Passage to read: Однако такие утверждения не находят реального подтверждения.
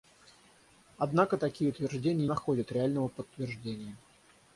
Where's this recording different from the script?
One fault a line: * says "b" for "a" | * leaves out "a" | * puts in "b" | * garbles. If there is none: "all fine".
* leaves out "не"